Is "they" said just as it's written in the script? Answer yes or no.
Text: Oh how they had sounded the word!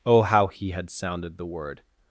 no